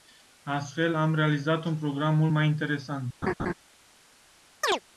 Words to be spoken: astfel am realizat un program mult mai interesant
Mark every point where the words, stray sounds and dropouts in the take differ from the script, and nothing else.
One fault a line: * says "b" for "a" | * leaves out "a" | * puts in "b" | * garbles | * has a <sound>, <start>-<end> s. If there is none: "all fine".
* has a laugh, 3.2-3.5 s
* has a chirp, 4.6-4.8 s